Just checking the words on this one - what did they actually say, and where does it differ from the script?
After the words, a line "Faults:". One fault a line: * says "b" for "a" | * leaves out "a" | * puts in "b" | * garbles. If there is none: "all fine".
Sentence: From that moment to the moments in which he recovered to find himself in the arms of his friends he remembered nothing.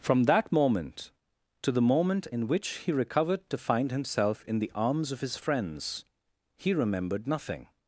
From that moment to the moment in which he recovered to find himself in the arms of his friends he remembered nothing.
Faults:
* says "moment" for "moments"